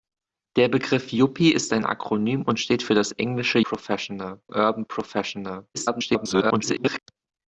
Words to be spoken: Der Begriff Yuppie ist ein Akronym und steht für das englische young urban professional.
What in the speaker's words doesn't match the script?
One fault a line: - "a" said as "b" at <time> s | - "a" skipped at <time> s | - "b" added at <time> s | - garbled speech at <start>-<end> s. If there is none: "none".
- "young" said as "professional" at 3.6 s
- garbled speech at 5.7-7.0 s